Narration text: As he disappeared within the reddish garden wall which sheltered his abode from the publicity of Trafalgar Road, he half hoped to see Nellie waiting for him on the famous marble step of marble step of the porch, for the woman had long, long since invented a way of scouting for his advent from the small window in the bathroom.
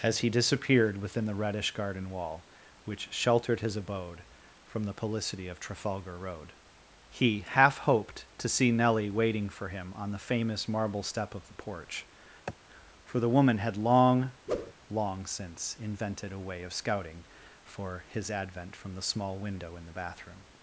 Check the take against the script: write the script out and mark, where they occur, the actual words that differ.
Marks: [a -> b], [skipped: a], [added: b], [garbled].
As he disappeared within the reddish garden wall which sheltered his abode from the publicity of Trafalgar Road, he half hoped to see Nellie waiting for him on the famous marble step of [skipped: marble step of] the porch, for the woman had long, long since invented a way of scouting for his advent from the small window in the bathroom.